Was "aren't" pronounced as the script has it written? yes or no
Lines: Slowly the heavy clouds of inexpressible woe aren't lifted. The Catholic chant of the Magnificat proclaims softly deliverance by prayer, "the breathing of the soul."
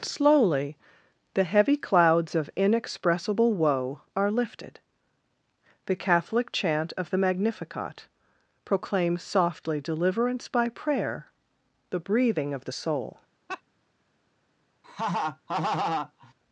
no